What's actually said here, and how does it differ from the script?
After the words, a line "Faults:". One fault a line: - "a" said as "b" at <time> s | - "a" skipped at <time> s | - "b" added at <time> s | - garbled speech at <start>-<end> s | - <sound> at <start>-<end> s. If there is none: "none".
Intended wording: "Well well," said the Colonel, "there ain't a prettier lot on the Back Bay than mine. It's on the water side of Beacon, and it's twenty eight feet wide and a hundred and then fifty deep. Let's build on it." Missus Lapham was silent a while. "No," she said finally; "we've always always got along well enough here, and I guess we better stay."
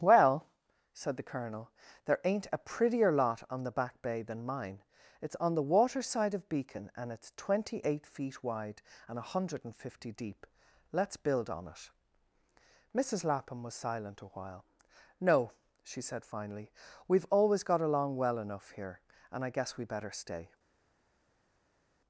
"Well," said the Colonel, "there ain't a prettier lot on the Back Bay than mine. It's on the water side of Beacon, and it's twenty eight feet wide and a hundred and fifty deep. Let's build on it." Missus Lapham was silent a while. "No," she said finally; "we've always got along well enough here, and I guess we better stay."
Faults:
- "well" skipped at 0.5 s
- "then" skipped at 9.8 s
- "always" skipped at 17.6 s